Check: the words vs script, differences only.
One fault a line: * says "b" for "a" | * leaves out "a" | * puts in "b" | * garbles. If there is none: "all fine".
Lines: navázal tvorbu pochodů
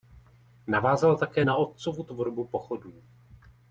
* puts in "také na otcovu"